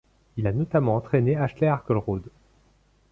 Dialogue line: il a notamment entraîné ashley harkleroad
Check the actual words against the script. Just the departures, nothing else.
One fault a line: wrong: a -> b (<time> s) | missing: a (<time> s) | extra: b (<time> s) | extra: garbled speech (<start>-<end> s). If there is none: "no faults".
no faults